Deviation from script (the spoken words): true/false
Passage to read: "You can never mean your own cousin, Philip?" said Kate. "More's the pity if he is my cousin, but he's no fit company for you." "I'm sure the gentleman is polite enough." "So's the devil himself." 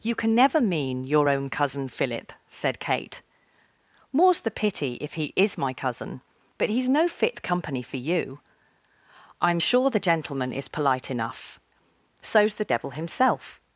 false